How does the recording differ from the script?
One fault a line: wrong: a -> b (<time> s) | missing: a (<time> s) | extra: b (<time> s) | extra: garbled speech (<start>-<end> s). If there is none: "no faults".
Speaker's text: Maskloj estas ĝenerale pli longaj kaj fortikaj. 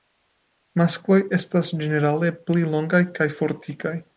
no faults